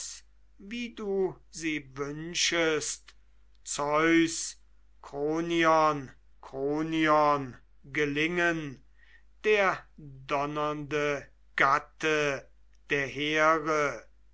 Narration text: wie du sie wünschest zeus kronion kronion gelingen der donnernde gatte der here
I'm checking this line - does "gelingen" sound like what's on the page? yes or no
yes